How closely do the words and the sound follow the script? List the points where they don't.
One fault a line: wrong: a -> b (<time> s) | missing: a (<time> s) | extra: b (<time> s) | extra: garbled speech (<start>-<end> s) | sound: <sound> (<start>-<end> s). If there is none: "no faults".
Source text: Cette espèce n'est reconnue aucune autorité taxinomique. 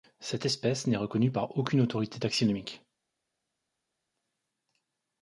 extra: par (1.3 s)